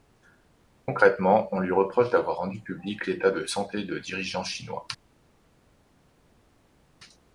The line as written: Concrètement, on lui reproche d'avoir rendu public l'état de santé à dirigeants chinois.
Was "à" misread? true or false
true